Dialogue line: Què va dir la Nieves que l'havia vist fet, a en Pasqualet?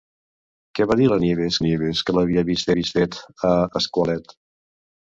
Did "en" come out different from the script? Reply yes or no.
yes